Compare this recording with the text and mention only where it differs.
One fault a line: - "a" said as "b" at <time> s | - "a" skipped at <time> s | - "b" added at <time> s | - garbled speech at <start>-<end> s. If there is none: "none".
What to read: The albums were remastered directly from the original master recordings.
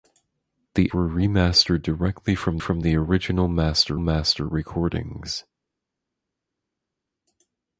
- "albums" skipped at 0.9 s
- "from" added at 2.6 s
- "master" added at 4.0 s